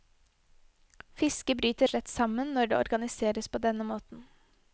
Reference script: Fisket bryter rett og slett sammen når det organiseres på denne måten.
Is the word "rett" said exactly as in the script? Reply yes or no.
no